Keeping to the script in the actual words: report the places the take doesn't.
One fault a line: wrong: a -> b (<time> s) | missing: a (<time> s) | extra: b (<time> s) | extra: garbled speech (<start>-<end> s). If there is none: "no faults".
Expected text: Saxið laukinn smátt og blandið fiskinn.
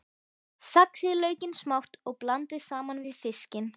extra: saman við (2.7 s)